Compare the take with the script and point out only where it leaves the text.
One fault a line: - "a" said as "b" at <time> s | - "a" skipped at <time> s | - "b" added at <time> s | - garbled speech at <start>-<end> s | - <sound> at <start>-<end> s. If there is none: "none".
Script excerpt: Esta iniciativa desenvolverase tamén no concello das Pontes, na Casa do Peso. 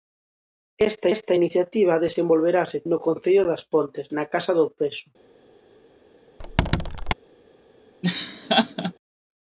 - "esta" added at 1.1 s
- "tamén" skipped at 2.8 s
- squeak at 6.4-7.1 s
- laugh at 8.0-8.9 s